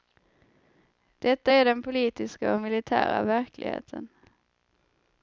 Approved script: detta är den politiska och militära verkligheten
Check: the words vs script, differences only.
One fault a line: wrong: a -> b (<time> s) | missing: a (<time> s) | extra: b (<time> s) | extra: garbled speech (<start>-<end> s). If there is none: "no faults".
no faults